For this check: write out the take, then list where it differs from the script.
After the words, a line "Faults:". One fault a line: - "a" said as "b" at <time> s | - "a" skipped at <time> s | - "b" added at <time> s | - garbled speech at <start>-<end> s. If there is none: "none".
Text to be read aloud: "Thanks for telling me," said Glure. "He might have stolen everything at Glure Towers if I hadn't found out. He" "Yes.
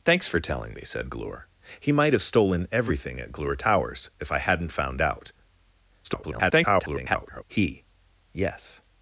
"Thanks for telling me," said Glure. "He might have stolen everything at Glure Towers if I hadn't found out. [garbled] He" "Yes.
Faults:
- garbled speech at 6.0-7.4 s